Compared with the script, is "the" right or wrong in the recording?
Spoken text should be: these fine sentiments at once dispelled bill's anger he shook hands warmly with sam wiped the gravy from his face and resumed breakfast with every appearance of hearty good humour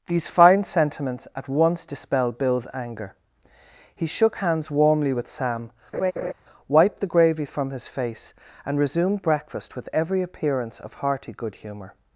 right